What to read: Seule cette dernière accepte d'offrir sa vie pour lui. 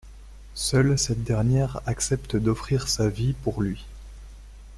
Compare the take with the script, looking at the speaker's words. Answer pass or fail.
pass